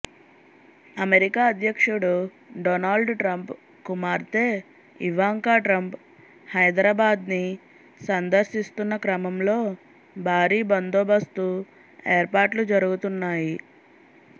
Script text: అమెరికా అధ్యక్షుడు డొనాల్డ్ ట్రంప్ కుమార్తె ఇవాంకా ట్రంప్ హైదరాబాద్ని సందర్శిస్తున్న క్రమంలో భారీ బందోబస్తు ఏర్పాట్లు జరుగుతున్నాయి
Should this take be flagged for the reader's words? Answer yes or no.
no